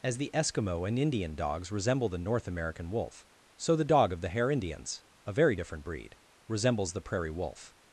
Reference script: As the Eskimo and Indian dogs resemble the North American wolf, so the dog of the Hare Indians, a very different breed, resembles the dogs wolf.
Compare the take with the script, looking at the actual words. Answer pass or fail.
fail